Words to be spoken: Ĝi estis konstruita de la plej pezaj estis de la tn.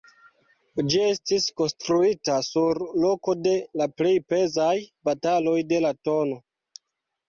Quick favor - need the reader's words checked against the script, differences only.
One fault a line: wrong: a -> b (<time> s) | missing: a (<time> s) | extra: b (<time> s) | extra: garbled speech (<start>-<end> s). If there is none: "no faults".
extra: sur loko (2.5 s)
wrong: estis -> bataloj (5.1 s)